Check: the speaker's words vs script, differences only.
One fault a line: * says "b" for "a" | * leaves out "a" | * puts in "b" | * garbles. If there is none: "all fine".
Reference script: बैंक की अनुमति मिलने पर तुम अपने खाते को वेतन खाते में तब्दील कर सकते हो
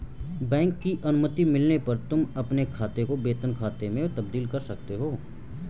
all fine